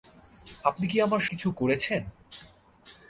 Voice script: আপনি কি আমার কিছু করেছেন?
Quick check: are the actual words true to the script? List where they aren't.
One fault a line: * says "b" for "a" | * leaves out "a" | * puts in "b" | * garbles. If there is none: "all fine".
all fine